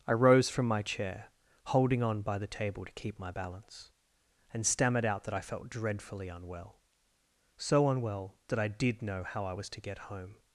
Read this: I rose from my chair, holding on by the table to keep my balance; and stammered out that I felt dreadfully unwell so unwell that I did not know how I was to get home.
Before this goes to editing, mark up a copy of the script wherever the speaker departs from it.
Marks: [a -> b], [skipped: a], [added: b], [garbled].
I rose from my chair, holding on by the table to keep my balance; and stammered out that I felt dreadfully unwell so unwell that I did [skipped: not] know how I was to get home.